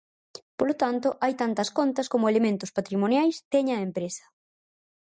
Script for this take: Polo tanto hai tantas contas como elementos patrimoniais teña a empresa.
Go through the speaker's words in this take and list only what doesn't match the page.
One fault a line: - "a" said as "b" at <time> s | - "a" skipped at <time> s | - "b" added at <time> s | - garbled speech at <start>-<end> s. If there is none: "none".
none